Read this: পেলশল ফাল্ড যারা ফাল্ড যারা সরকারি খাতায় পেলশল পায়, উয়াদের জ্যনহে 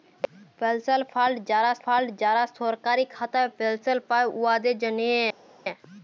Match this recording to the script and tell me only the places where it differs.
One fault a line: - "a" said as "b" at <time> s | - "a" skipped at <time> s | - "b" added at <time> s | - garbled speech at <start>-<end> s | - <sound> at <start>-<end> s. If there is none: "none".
none